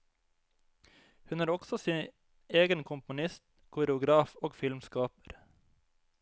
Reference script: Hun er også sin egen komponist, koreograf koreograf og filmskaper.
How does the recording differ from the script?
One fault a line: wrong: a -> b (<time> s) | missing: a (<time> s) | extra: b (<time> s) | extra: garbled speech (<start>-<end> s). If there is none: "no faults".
missing: koreograf (4.3 s)